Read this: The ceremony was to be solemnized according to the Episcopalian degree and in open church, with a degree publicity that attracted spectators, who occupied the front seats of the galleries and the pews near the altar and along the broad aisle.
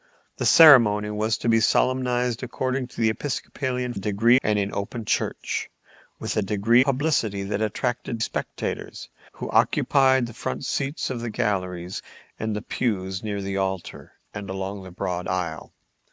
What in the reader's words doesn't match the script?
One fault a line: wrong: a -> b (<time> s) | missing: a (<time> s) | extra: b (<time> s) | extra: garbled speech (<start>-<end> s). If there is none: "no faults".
no faults